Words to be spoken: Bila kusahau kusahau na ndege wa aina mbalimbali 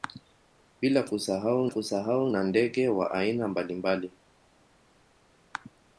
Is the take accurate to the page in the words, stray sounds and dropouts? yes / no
yes